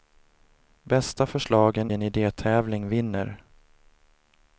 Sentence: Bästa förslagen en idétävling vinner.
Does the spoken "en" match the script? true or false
true